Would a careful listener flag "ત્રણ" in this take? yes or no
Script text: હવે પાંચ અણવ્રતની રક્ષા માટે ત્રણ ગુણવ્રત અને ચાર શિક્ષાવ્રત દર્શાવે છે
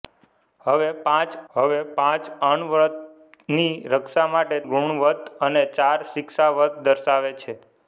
yes